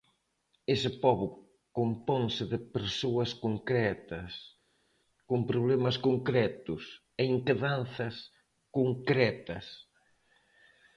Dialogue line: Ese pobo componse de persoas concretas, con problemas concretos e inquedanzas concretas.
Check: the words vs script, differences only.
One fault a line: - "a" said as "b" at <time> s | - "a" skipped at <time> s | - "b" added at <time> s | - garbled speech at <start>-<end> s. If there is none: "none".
none